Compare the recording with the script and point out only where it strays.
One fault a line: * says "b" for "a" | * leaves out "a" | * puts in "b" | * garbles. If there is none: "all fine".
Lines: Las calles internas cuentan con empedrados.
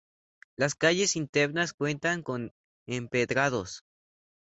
all fine